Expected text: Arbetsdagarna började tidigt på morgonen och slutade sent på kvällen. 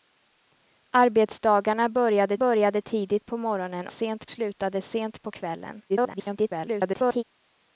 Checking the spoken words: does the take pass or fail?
fail